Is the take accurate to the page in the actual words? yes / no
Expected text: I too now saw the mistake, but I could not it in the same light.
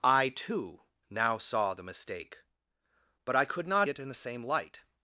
yes